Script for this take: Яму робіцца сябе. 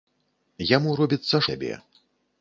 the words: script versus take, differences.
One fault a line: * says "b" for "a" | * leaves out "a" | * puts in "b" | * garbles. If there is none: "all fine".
all fine